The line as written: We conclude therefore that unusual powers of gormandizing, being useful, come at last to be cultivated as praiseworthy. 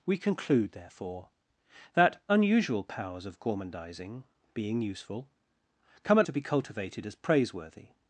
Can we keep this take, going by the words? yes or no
no